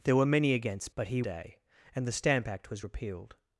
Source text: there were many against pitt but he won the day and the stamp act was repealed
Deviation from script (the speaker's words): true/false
true